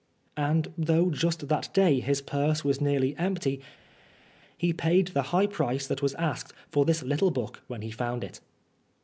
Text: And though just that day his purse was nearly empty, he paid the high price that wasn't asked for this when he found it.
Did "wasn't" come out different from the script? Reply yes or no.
yes